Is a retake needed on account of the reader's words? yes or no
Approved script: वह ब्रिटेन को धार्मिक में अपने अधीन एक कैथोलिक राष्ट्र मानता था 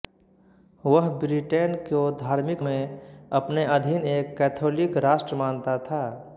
no